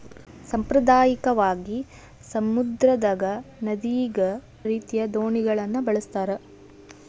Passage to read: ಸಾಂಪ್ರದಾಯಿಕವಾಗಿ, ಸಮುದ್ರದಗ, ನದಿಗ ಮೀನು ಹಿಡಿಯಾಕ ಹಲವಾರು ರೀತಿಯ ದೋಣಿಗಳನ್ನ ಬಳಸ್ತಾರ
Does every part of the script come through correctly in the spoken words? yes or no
no